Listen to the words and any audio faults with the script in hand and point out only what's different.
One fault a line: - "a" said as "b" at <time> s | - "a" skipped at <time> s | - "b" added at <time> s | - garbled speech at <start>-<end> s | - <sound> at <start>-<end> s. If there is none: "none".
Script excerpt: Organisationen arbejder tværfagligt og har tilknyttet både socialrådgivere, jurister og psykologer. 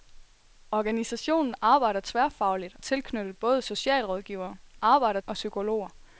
- "og" skipped at 2.8 s
- "jurister" said as "arbejder" at 4.8 s